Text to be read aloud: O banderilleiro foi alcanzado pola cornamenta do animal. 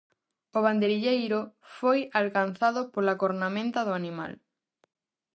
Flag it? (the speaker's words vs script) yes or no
no